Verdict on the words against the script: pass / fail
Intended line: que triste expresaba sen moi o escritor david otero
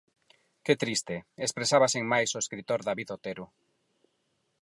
fail